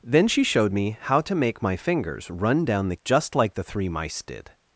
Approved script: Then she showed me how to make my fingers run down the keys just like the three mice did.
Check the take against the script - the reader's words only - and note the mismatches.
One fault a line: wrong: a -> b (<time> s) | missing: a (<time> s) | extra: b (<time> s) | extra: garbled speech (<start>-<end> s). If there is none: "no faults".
missing: keys (3.0 s)